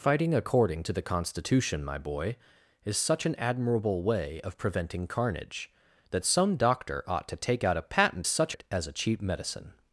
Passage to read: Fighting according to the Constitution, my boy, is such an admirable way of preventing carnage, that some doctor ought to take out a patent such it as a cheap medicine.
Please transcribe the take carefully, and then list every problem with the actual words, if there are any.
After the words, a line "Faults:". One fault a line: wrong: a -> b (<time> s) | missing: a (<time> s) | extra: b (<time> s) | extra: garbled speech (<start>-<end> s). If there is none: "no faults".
Fighting according to the Constitution, my boy, is such an admirable way of preventing carnage, that some doctor ought to take out a patent such it as a cheap medicine.
Faults:
no faults